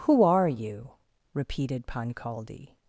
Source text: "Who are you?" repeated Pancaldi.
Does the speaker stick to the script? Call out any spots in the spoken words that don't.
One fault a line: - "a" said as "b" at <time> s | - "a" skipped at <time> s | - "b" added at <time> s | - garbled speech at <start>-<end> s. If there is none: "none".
none